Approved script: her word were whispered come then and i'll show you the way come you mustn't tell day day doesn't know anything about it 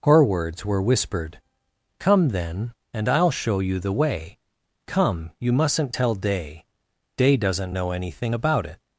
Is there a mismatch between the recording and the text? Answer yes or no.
yes